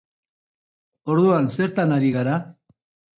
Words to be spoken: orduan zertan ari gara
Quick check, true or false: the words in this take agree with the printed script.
true